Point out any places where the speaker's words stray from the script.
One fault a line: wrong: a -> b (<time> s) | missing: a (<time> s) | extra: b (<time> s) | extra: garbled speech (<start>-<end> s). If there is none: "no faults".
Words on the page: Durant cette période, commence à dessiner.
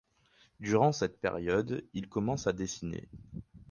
extra: il (1.9 s)